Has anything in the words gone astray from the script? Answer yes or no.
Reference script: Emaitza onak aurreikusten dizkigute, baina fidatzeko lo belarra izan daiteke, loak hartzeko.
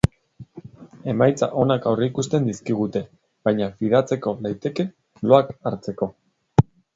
yes